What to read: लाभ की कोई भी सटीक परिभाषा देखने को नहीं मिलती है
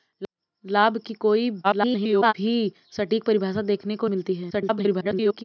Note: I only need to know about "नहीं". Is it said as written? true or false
false